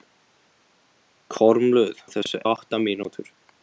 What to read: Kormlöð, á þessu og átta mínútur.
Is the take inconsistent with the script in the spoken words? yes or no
no